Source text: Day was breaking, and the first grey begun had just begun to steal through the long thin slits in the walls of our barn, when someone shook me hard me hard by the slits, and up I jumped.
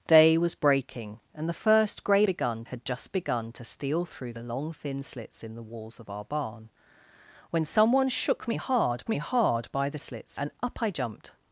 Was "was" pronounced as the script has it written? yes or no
yes